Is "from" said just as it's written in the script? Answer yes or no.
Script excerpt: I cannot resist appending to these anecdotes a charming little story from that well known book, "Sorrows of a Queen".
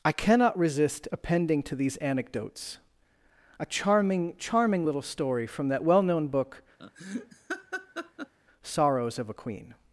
yes